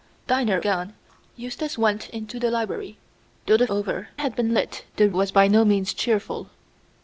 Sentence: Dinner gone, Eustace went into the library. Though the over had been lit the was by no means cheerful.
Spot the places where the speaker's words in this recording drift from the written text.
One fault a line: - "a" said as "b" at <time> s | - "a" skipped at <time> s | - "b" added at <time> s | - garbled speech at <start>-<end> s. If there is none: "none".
none